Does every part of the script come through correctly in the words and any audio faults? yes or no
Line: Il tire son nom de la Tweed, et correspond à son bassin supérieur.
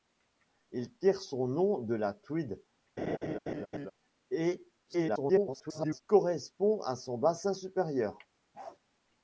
no